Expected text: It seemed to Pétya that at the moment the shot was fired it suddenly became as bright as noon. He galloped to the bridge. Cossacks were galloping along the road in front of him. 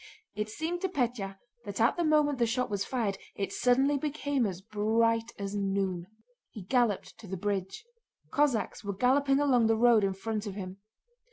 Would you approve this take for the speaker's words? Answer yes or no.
yes